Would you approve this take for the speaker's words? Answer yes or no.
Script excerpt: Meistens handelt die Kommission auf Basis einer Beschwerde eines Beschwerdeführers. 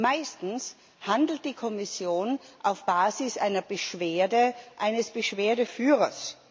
yes